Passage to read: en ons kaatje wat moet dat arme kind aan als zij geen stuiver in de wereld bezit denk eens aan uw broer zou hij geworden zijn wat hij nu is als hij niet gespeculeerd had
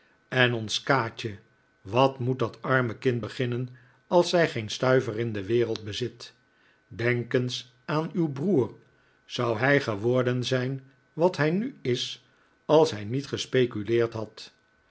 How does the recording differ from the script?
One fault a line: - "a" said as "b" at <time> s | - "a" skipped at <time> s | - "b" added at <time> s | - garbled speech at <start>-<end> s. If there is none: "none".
- "aan" said as "beginnen" at 3.2 s